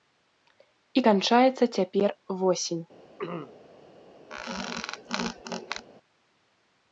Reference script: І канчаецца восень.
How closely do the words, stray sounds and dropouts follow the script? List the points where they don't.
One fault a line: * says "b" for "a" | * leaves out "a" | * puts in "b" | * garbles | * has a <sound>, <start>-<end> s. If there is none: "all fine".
* puts in "цяпер"
* has a throat clearing, 3.2-3.6 s
* has a squeak, 4.3-5.9 s